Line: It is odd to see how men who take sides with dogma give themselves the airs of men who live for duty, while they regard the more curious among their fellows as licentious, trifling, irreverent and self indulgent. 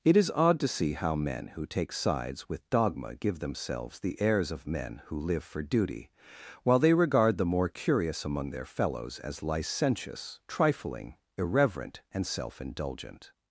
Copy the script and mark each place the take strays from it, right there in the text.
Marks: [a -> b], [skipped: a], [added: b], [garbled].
It is odd to see how men who take sides with dogma give themselves the airs of men who live for duty, while they regard the more curious among their fellows as licentious, trifling, irreverent and self indulgent.